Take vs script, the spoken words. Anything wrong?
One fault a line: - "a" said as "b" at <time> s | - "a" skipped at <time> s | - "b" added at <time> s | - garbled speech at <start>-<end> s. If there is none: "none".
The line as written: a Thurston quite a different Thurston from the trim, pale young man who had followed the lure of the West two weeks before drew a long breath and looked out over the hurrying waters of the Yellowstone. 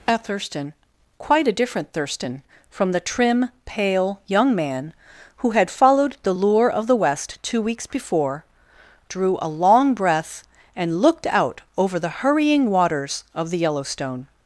none